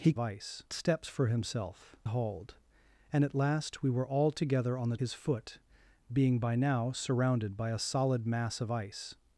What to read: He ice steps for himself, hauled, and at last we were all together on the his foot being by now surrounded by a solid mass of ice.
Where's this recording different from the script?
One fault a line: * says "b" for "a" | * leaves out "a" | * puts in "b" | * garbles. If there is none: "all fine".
all fine